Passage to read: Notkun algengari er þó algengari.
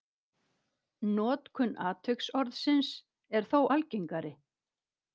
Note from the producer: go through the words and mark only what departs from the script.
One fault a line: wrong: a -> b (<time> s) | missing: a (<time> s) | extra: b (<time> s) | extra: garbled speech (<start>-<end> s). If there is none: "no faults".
wrong: algengari -> atviksorðsins (1.9 s)